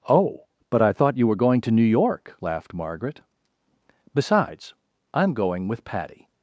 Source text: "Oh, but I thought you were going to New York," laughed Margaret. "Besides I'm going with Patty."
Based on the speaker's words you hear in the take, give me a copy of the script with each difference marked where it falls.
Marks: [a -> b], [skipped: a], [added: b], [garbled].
"Oh, but I thought you were going to New York," laughed Margaret. "Besides I'm going with Patty."